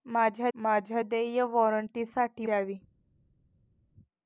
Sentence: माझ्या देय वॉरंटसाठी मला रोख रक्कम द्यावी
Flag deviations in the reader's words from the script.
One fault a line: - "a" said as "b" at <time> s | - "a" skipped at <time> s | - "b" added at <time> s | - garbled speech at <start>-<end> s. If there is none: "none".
- "माझ्या" added at 0.5 s
- "मला रोख रक्कम" skipped at 2.5 s